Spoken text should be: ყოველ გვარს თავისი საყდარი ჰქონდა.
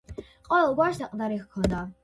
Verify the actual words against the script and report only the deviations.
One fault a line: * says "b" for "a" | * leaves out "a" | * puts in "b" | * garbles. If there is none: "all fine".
* leaves out "თავისი"